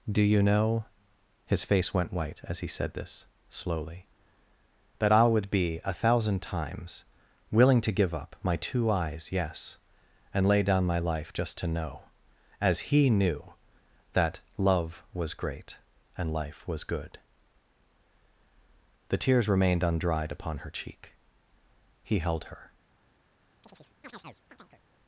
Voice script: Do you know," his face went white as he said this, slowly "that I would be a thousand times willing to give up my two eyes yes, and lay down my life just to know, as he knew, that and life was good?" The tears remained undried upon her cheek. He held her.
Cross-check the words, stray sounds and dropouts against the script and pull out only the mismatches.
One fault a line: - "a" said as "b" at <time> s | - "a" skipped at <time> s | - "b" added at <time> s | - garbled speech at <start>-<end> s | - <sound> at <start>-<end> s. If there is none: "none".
- "love was great" added at 14.6 s
- chirp at 23.6-24.8 s